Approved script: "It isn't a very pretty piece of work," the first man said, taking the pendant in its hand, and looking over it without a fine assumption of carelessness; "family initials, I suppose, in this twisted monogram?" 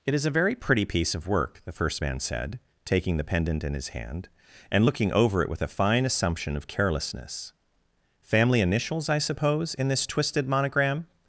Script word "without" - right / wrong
wrong